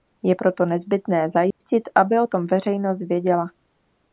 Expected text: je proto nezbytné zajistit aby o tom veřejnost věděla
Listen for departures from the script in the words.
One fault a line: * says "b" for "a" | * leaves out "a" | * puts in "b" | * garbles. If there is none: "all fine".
all fine